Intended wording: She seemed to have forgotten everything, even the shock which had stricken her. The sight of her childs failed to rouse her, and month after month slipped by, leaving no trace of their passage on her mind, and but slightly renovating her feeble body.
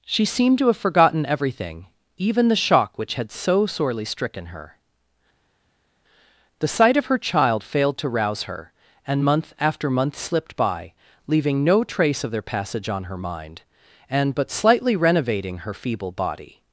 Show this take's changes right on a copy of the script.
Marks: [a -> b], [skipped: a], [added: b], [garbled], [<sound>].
She seemed to have forgotten everything, even the shock which had [added: so sorely] stricken her. The sight of her [childs -> child] failed to rouse her, and month after month slipped by, leaving no trace of their passage on her mind, and but slightly renovating her feeble body.